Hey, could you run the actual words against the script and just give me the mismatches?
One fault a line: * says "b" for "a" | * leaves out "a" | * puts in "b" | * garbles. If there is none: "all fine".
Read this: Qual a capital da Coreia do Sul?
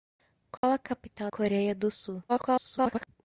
* leaves out "da"
* garbles